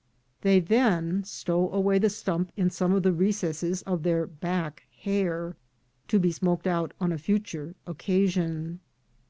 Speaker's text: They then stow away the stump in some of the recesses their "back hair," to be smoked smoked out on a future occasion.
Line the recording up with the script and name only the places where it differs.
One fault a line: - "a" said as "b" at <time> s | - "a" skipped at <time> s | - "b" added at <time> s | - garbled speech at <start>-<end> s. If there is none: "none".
- "of" added at 3.8 s
- "smoked" skipped at 6.7 s